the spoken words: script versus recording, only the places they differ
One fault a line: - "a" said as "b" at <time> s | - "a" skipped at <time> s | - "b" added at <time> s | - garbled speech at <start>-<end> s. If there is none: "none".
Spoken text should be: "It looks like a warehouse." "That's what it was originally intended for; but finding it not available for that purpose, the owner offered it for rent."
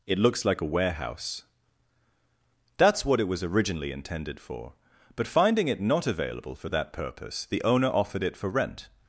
none